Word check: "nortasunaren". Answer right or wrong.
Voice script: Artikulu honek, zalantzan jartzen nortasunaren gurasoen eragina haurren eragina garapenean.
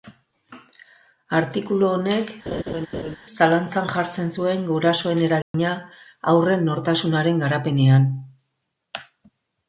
wrong